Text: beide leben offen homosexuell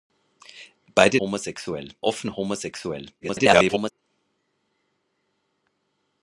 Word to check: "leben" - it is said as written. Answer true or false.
false